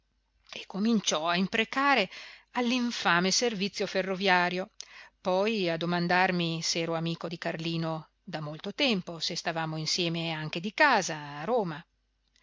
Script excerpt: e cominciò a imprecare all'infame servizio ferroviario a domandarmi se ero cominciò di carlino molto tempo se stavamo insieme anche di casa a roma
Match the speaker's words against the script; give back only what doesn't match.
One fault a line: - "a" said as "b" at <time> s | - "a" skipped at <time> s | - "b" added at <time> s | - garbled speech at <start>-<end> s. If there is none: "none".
- "poi" added at 5.2 s
- "cominciò" said as "amico" at 7.0 s
- "da" added at 8.2 s